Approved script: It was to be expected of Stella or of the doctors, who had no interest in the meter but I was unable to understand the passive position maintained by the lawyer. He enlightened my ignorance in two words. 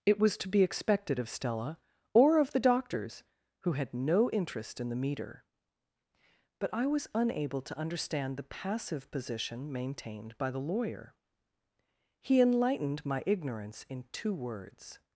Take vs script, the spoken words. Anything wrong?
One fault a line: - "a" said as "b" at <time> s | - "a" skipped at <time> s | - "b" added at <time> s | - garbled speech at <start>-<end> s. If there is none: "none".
none